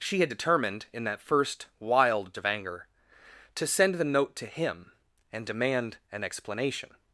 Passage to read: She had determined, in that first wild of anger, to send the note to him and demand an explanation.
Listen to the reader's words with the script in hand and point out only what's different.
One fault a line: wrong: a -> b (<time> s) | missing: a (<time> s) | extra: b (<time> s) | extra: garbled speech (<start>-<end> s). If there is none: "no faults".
no faults